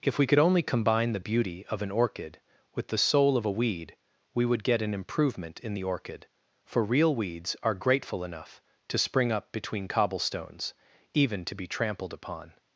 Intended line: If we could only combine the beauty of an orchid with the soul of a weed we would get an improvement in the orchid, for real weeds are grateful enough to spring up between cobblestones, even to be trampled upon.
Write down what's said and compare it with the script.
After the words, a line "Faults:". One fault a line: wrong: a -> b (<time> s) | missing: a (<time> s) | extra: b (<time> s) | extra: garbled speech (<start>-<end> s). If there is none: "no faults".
If we could only combine the beauty of an orchid with the soul of a weed we would get an improvement in the orchid, for real weeds are grateful enough to spring up between cobblestones, even to be trampled upon.
Faults:
no faults